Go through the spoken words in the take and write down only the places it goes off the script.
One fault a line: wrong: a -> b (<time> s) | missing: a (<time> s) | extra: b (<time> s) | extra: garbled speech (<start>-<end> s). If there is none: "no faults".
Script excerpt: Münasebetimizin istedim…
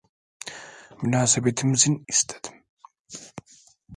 no faults